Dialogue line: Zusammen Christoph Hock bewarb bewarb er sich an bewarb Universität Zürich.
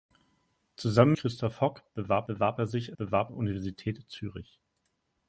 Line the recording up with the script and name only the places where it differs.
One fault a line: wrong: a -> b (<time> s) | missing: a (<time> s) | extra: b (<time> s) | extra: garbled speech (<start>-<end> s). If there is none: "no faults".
no faults